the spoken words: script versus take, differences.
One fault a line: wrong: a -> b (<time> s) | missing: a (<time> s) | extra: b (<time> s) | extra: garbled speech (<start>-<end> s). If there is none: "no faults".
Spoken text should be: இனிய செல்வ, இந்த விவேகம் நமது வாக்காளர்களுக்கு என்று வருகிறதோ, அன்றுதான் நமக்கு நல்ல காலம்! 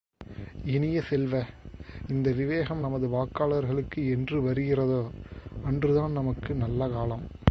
no faults